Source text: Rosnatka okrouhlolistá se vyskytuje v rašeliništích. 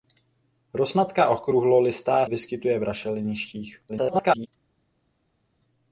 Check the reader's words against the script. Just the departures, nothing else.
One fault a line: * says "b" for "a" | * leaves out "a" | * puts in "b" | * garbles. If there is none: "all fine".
* leaves out "se"
* garbles